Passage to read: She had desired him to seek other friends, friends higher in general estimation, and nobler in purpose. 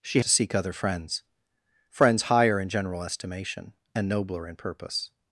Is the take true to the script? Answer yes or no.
no